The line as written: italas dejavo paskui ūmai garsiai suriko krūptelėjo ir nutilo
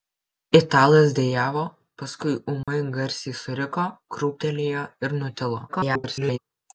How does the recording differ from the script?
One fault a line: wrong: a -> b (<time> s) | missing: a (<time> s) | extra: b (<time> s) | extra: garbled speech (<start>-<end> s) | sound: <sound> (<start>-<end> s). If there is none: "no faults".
sound: dropout (2.6-2.7 s)
extra: garbled speech (5.7-6.4 s)